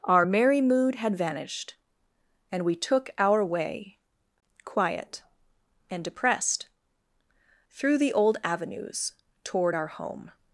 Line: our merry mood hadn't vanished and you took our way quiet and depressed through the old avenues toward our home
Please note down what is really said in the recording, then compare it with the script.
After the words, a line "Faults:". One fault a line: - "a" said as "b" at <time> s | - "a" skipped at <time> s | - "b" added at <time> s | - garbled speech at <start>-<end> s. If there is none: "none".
our merry mood had vanished and we took our way quiet and depressed through the old avenues toward our home
Faults:
- "hadn't" said as "had" at 0.9 s
- "you" said as "we" at 2.6 s